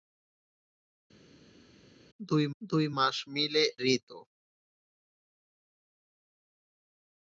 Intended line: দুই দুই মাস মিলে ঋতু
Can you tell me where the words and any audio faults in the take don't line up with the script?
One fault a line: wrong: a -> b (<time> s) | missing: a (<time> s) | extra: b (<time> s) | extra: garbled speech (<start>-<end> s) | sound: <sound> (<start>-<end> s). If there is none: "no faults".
no faults